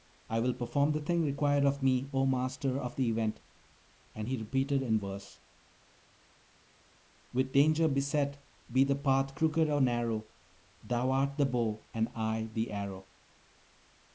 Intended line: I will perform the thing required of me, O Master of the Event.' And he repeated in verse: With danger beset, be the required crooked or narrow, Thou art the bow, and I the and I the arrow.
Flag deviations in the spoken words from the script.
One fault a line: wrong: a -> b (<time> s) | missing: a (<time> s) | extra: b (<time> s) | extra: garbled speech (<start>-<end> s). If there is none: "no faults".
wrong: required -> path (9.0 s)
missing: and I the (12.7 s)